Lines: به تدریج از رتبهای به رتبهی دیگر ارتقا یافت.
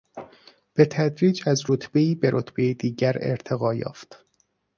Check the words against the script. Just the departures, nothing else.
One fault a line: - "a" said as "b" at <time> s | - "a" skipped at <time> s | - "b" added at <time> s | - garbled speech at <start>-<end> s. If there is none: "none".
none